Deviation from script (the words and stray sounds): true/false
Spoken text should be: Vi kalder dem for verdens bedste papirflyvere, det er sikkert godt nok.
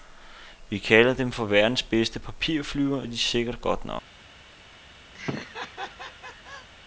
true